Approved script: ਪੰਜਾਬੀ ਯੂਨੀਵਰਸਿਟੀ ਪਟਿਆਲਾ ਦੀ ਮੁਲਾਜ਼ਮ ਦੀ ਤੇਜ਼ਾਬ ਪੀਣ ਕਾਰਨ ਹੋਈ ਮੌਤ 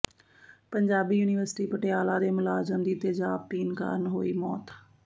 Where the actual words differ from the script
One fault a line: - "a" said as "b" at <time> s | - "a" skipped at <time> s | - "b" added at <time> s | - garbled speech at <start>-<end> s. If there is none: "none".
- "ਦੀ" said as "ਦੇ" at 2.2 s